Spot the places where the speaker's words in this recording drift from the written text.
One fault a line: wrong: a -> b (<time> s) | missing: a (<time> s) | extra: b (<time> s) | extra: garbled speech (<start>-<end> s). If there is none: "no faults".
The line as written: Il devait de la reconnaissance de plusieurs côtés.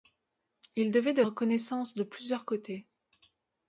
missing: la (1.2 s)